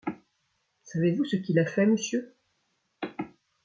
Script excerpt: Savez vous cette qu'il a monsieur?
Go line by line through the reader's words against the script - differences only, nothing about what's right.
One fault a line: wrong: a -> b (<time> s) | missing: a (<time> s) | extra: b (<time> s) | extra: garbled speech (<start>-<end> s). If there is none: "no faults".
wrong: cette -> ce (1.2 s)
extra: fait (1.7 s)